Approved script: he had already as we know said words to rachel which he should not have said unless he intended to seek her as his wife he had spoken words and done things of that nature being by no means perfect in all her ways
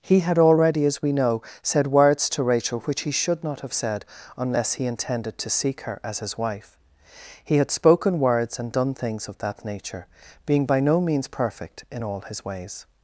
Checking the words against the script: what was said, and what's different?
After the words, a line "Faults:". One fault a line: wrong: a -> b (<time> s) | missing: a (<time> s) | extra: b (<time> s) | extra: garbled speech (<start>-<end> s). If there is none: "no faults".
he had already as we know said words to rachel which he should not have said unless he intended to seek her as his wife he had spoken words and done things of that nature being by no means perfect in all his ways
Faults:
wrong: her -> his (12.2 s)